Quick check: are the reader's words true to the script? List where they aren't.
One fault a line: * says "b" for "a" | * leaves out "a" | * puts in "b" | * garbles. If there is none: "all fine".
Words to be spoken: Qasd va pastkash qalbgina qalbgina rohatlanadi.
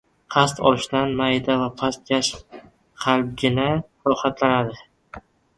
* puts in "olishdan mayda"
* leaves out "qalbgina"